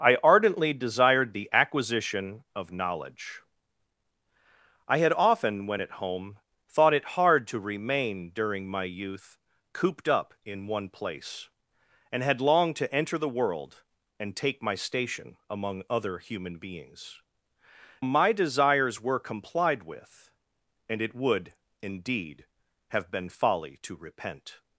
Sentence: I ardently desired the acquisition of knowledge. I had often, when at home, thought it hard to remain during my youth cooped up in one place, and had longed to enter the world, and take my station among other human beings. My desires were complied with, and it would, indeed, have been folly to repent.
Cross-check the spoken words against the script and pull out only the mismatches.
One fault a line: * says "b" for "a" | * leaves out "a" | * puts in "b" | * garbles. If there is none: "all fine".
all fine